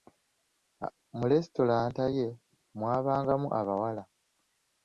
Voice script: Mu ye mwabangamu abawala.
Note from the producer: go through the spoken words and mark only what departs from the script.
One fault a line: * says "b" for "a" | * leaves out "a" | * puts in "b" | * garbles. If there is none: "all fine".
* puts in "lesitulanta"